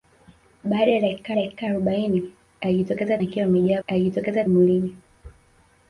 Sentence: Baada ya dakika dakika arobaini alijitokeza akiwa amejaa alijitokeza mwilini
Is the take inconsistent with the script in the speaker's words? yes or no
no